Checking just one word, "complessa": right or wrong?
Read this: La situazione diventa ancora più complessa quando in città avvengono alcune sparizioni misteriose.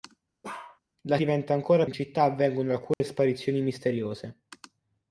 wrong